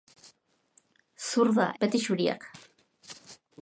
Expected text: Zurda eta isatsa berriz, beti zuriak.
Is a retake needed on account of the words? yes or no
yes